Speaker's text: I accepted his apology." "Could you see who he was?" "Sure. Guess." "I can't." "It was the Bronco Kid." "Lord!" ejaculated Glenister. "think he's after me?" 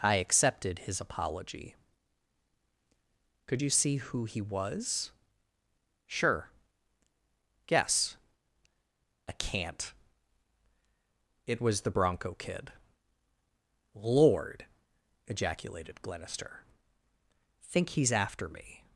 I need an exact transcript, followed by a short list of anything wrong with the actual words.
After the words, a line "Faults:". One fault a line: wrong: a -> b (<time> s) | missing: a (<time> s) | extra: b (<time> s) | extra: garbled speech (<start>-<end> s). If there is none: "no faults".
I accepted his apology." "Could you see who he was?" "Sure. Guess." "I can't." "It was the Bronco Kid." "Lord!" ejaculated Glenister. "think he's after me?"
Faults:
no faults